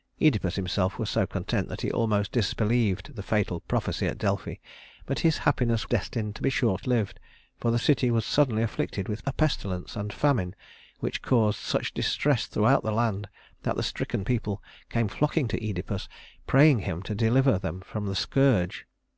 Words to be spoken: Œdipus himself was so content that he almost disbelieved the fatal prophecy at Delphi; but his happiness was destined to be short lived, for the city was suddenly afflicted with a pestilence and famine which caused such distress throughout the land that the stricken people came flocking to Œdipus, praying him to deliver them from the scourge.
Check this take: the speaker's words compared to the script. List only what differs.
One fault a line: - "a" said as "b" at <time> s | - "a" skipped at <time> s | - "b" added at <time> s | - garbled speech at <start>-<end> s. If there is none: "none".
- "was" skipped at 5.9 s